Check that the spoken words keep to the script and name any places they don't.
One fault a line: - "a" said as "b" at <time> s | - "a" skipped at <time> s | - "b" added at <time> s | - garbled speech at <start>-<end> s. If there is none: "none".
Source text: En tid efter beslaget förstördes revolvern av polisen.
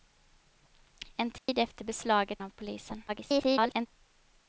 - "förstördes revolvern" skipped at 2.4 s
- garbled speech at 3.1-3.9 s